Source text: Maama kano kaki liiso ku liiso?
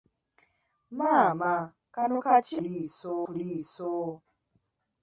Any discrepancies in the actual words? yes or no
no